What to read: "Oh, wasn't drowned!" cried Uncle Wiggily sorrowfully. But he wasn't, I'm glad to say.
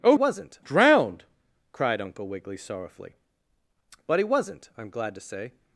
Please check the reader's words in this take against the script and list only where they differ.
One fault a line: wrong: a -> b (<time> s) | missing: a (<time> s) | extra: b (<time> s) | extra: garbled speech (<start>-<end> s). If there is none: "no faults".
no faults